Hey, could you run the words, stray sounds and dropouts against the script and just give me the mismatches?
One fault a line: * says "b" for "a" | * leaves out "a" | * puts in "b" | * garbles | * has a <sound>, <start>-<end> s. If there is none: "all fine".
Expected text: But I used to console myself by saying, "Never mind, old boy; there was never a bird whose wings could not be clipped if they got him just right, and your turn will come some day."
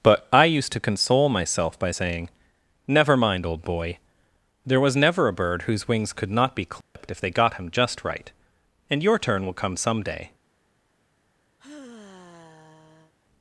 * has a dropout, 6.8-7.0 s
* has a sigh, 11.6-13.1 s